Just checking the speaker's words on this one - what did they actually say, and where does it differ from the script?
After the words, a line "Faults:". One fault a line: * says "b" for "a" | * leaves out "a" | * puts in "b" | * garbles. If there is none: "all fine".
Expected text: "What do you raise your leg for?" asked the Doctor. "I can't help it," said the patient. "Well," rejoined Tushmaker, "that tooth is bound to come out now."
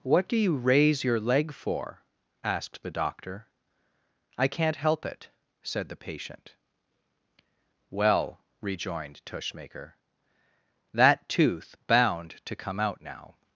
"What do you raise your leg for?" asked the Doctor. "I can't help it," said the patient. "Well," rejoined Tushmaker, "that tooth bound to come out now."
Faults:
* leaves out "is"